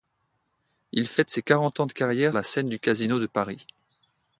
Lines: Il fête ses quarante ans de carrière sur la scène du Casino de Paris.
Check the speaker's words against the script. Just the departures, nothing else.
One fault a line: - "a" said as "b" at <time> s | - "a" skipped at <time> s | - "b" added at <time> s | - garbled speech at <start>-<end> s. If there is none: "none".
- "sur" skipped at 2.4 s